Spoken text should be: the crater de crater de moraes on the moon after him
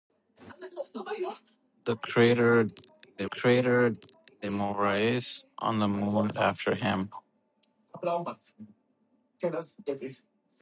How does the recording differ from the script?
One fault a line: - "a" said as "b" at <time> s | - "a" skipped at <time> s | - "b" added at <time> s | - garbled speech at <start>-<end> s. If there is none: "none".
none